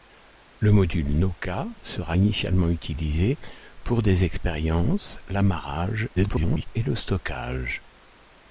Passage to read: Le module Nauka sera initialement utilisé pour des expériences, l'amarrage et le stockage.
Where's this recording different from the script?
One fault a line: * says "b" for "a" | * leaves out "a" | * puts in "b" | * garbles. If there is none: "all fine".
* garbles